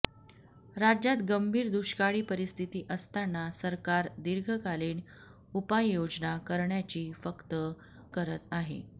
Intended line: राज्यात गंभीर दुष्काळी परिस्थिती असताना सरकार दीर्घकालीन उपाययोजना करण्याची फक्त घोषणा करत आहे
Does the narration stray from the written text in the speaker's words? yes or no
yes